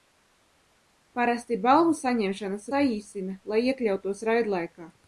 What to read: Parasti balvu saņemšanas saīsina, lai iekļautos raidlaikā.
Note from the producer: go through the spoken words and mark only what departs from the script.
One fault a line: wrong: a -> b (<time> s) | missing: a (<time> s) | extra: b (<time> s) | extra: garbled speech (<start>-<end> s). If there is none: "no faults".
no faults